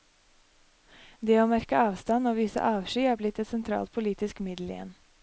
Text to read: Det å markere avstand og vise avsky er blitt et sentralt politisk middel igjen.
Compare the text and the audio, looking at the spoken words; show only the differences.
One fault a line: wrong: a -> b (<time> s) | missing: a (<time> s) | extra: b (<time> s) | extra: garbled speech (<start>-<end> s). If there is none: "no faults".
no faults